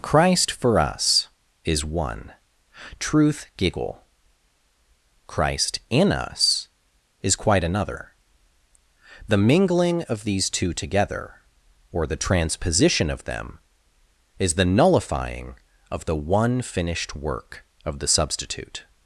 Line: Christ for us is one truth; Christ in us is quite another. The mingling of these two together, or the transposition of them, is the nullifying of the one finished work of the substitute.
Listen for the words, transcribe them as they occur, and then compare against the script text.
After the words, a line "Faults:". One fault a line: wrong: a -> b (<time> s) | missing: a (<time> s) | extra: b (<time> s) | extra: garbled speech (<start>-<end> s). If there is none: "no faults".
Christ for us is one truth; giggle Christ in us is quite another. The mingling of these two together, or the transposition of them, is the nullifying of the one finished work of the substitute.
Faults:
extra: giggle (3.5 s)